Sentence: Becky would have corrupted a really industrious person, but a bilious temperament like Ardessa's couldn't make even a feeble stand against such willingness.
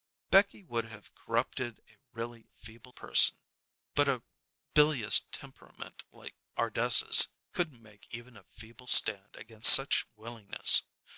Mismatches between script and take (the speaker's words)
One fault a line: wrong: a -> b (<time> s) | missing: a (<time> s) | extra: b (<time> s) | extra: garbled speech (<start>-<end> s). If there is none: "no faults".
wrong: industrious -> feeble (2.5 s)